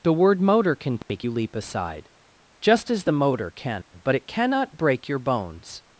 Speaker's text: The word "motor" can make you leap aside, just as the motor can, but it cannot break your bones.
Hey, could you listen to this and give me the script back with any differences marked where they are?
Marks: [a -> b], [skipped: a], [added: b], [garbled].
The word "motor" can make you leap aside, just as the motor can, but it cannot break your bones.